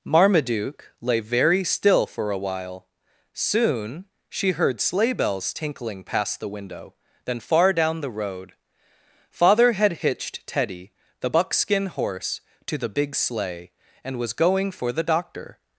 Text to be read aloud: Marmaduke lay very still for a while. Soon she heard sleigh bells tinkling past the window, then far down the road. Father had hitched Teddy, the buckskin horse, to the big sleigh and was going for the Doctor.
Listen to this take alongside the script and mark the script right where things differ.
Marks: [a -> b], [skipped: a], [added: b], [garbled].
Marmaduke lay very still for a while. Soon she heard sleigh bells tinkling past the window, then far down the road. Father had hitched Teddy, the buckskin horse, to the big sleigh and was going for the Doctor.